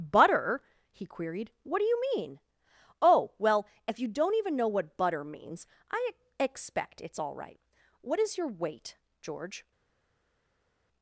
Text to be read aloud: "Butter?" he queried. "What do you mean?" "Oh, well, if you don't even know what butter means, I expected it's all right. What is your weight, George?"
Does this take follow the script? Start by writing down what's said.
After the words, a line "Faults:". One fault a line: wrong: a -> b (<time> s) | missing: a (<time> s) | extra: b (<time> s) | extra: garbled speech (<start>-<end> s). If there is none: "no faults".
"Butter?" he queried. "What do you mean?" "Oh, well, if you don't even know what butter means, I expect it's all right. What is your weight, George?"
Faults:
wrong: expected -> expect (6.4 s)